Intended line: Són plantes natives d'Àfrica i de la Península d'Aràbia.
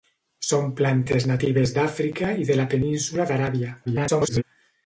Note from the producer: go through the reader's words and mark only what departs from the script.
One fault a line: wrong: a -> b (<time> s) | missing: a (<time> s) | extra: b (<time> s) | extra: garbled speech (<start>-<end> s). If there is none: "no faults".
extra: garbled speech (3.8-4.4 s)